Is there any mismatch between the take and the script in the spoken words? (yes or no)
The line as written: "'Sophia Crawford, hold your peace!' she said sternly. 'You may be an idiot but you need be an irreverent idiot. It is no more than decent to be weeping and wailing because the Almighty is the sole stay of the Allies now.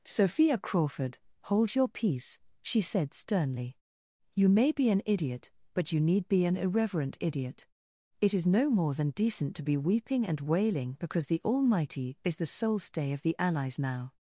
no